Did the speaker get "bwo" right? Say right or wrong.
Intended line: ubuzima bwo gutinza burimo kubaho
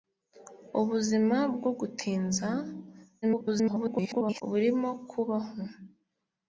right